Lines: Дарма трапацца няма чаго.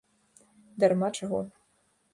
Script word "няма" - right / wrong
wrong